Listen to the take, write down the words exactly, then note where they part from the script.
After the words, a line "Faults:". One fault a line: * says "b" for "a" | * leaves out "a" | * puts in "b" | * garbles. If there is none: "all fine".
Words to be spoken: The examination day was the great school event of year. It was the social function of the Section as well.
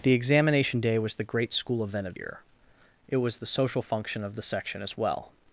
The examination day was the great school event of year. It was the social function of the Section as well.
Faults:
all fine